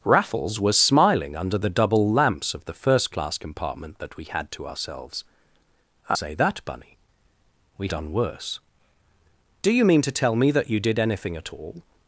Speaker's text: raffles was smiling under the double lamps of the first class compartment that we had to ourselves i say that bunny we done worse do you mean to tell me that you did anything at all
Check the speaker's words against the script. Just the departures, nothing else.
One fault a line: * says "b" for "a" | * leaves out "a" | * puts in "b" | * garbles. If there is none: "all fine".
all fine